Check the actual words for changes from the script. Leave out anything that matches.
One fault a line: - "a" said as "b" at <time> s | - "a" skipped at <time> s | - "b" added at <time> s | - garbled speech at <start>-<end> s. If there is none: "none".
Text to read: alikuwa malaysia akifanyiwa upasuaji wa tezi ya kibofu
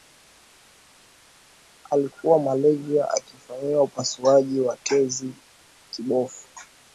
- "ya" skipped at 5.3 s